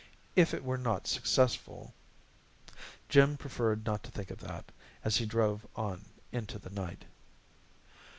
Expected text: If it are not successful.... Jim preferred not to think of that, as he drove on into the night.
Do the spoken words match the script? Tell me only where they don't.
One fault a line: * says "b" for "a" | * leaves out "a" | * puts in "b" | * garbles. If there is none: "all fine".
* says "were" for "are"